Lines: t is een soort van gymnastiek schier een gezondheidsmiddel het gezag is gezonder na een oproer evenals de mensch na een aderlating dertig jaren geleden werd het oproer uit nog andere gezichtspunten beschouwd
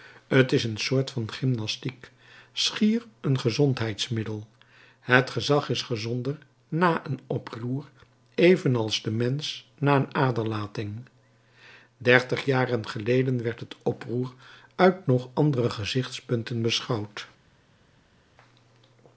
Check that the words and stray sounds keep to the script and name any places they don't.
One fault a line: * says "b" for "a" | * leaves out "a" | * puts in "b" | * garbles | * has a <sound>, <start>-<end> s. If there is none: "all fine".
all fine